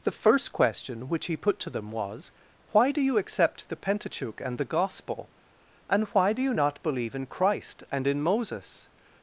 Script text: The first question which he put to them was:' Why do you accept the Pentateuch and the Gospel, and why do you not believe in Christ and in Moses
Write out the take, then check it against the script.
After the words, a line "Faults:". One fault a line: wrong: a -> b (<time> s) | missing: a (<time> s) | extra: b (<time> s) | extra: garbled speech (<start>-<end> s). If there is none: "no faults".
The first question which he put to them was:' Why do you accept the Pentateuch and the Gospel, and why do you not believe in Christ and in Moses
Faults:
no faults